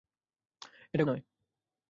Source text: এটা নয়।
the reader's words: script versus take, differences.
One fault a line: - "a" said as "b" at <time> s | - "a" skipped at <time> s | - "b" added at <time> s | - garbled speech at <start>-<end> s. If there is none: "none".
none